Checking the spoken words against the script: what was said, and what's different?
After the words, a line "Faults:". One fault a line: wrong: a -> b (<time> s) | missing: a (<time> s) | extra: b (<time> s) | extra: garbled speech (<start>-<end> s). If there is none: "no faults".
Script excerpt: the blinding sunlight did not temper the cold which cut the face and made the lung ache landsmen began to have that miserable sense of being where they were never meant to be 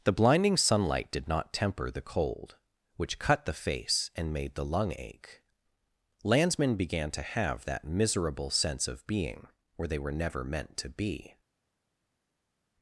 the blinding sunlight did not temper the cold which cut the face and made the lung ache landsmen began to have that miserable sense of being where they were never meant to be
Faults:
no faults